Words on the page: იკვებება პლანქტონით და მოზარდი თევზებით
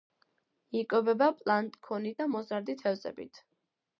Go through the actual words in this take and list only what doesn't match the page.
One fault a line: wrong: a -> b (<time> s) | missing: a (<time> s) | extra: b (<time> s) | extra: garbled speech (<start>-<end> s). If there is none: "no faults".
no faults